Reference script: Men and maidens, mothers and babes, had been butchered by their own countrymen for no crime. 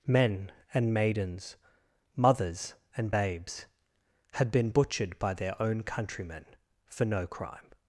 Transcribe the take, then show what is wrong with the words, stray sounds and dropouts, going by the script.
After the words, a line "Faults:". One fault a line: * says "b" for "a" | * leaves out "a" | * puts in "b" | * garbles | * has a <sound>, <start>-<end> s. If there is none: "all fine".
Men and maidens, mothers and babes, had been butchered by their own countrymen for no crime.
Faults:
all fine